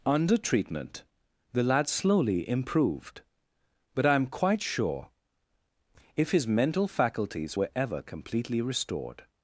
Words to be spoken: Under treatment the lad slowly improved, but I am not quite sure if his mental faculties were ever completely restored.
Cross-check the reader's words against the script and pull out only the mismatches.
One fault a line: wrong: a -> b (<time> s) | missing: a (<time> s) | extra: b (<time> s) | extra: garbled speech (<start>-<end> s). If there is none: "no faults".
missing: not (4.3 s)